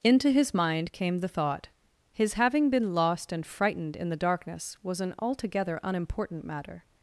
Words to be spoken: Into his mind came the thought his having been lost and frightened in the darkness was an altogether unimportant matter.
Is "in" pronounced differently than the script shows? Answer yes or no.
no